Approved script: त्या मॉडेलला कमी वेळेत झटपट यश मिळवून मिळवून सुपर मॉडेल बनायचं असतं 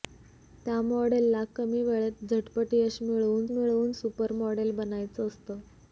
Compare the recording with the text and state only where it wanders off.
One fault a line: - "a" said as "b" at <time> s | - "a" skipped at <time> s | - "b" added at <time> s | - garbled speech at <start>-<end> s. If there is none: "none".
none